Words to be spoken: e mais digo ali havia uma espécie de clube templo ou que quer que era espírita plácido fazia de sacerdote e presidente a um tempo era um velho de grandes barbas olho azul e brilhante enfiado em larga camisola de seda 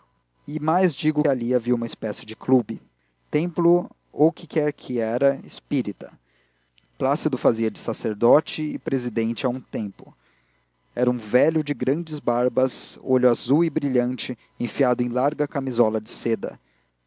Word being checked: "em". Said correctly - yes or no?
yes